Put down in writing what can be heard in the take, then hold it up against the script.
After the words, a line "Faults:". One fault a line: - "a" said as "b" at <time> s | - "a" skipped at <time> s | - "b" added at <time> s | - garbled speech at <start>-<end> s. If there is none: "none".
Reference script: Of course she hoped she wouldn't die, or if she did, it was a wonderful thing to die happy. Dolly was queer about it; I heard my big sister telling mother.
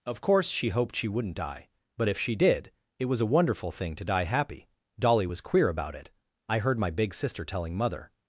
Of course she hoped she wouldn't die, but if she did, it was a wonderful thing to die happy. Dolly was queer about it; I heard my big sister telling mother.
Faults:
- "or" said as "but" at 2.0 s